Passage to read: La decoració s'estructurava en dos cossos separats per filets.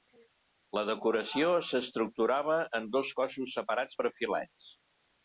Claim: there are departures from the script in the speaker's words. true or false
false